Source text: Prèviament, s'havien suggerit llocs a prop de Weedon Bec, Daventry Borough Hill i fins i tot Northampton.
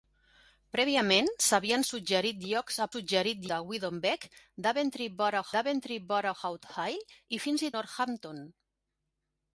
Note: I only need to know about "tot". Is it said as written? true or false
false